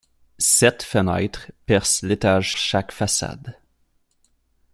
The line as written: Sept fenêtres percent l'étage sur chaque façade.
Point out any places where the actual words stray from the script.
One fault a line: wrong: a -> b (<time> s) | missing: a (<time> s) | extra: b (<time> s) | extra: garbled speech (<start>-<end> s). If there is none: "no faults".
missing: sur (2.5 s)